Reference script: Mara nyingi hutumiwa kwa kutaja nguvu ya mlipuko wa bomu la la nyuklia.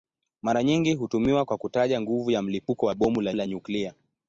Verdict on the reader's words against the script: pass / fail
pass